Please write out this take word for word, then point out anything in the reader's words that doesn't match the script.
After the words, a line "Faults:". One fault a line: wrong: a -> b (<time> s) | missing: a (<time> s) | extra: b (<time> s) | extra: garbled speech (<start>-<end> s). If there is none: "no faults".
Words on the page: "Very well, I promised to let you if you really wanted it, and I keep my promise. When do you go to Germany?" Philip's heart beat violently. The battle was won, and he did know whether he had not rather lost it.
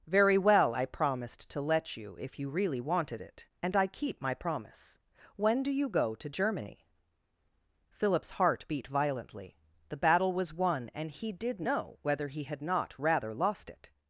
"Very well, I promised to let you if you really wanted it, and I keep my promise. When do you go to Germany?" Philip's heart beat violently. The battle was won, and he did know whether he had not rather lost it.
Faults:
no faults